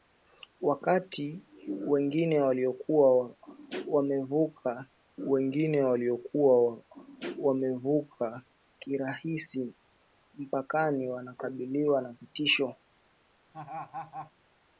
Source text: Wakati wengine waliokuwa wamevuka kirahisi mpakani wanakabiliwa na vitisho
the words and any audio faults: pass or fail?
fail